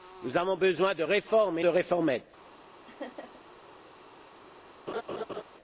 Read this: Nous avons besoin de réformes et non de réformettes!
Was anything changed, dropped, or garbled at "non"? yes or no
yes